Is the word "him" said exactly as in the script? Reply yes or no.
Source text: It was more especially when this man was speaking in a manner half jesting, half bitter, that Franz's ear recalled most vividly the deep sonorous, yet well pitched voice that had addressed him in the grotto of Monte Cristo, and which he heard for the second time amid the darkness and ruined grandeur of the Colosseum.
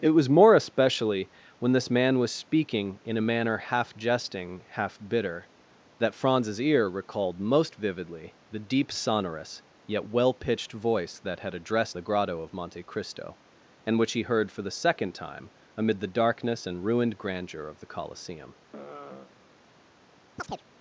no